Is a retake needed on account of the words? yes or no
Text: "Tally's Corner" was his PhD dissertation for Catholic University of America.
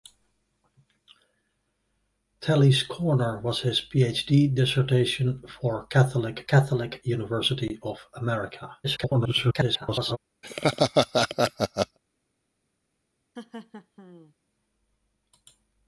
yes